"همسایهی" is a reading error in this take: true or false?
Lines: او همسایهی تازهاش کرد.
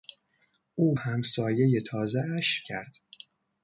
false